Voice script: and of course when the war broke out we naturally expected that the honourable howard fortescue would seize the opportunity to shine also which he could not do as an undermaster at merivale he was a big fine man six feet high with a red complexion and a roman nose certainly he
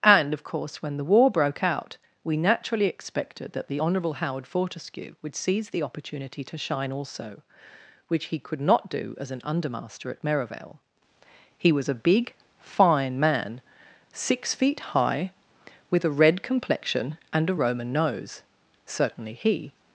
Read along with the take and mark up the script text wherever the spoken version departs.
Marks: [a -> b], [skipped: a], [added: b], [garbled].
and of course when the war broke out we naturally expected that the honourable howard fortescue would seize the opportunity to shine also which he could not do as an undermaster at merivale he was a big fine man six feet high with a red complexion and a roman nose certainly he